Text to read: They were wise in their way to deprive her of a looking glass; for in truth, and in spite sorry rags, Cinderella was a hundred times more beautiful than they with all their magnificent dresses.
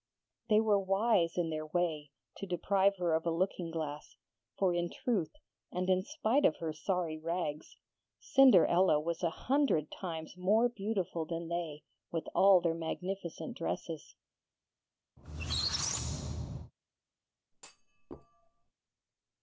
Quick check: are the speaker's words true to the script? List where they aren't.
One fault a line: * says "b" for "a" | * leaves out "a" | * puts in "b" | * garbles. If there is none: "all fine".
* puts in "of her"